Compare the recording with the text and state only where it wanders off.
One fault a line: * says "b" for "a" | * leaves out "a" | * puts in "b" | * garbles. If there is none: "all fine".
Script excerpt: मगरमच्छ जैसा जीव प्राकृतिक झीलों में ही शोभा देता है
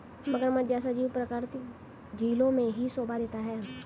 all fine